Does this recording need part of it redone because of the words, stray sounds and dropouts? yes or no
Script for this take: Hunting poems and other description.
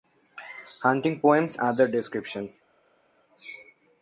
yes